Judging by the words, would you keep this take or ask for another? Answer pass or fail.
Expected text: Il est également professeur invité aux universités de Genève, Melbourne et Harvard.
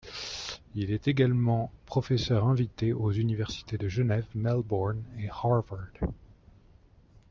pass